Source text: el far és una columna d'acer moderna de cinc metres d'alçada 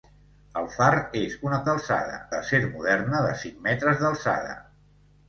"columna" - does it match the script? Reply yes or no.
no